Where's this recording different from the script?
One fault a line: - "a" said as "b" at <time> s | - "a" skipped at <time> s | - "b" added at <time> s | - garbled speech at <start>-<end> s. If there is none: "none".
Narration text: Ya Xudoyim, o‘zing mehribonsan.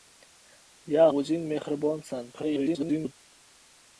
- "Xudoyim" skipped at 1.0 s
- garbled speech at 2.3-3.1 s